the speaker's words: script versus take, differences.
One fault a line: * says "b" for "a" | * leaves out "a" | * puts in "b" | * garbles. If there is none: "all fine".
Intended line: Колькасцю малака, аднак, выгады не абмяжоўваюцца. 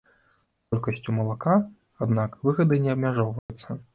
all fine